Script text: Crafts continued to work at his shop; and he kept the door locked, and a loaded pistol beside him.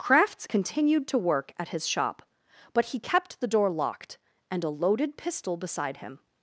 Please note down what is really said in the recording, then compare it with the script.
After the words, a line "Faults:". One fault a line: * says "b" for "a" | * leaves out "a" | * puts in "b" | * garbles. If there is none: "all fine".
Crafts continued to work at his shop; but he kept the door locked, and a loaded pistol beside him.
Faults:
* says "but" for "and"